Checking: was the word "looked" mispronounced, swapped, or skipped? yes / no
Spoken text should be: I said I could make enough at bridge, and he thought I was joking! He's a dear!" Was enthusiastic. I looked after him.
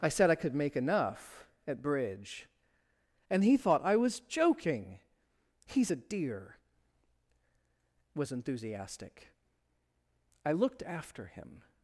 no